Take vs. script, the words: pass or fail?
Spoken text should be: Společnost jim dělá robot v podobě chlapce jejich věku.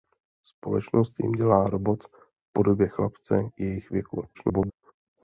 fail